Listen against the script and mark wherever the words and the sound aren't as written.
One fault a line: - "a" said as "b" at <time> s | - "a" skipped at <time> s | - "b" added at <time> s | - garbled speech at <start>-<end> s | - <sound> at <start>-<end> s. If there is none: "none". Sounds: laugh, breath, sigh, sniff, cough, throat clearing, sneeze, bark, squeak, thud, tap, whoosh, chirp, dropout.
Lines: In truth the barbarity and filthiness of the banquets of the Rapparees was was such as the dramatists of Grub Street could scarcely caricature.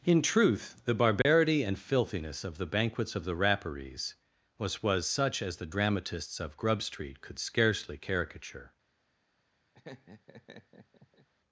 - dropout at 1.2-1.3 s
- laugh at 9.7-11.3 s